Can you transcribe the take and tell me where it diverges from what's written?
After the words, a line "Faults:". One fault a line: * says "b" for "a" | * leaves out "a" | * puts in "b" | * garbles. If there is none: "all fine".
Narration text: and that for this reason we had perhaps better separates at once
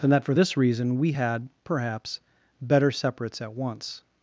and that for this reason we had perhaps better separates at once
Faults:
all fine